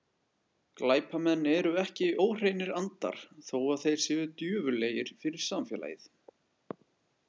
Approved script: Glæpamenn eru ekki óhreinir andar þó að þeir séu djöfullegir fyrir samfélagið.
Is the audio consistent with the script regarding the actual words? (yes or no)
yes